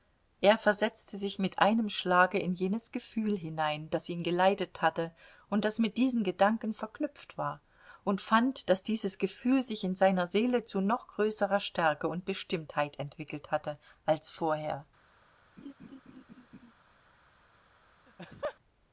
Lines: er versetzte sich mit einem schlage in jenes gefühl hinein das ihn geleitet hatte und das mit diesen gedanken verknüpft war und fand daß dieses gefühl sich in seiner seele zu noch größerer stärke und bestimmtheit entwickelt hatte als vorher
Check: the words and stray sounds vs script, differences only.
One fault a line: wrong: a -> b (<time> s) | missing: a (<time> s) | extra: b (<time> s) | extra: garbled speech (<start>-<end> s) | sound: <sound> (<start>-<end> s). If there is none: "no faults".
sound: laugh (15.6-16.7 s)
sound: laugh (18.1-18.6 s)